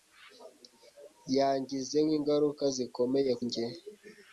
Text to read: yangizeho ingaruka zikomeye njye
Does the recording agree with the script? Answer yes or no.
yes